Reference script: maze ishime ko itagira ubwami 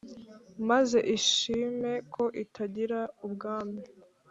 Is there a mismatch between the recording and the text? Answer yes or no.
no